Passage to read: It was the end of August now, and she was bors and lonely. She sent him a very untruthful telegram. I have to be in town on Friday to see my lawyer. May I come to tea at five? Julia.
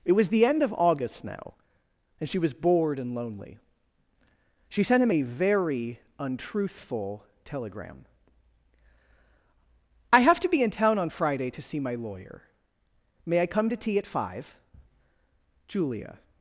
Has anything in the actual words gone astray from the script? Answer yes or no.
yes